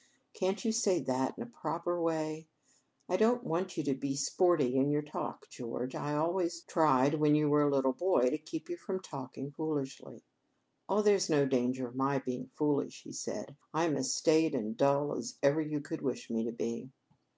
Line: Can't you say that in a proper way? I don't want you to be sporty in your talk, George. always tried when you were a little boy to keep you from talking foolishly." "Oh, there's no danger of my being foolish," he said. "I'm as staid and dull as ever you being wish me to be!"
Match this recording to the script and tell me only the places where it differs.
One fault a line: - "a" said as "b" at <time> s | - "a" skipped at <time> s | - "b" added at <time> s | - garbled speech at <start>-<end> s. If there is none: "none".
- "I" added at 5.9 s
- "being" said as "could" at 15.8 s